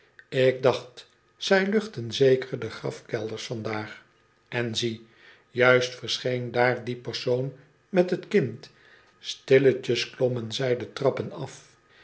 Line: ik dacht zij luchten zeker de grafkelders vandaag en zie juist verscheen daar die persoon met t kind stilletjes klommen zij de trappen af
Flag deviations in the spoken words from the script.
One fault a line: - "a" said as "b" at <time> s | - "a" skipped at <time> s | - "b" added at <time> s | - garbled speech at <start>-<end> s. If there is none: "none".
none